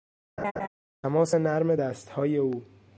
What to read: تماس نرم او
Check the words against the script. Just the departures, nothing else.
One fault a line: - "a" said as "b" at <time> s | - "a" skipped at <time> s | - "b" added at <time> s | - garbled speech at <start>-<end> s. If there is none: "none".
- "دستهای" added at 1.7 s